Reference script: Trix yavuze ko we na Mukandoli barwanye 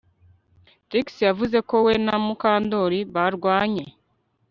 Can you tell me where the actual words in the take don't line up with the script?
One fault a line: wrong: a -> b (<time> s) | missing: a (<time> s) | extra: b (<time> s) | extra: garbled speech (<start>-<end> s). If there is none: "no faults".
no faults